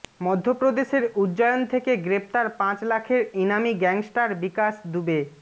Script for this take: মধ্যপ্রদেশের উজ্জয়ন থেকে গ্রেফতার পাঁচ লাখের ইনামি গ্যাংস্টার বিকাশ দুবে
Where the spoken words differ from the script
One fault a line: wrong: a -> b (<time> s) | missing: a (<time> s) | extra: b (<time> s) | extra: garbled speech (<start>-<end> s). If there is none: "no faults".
no faults